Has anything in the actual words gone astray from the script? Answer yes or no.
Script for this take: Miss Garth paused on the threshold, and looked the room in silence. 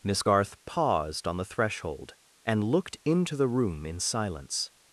yes